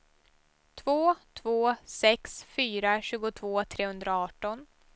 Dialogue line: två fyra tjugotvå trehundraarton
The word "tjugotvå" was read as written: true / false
true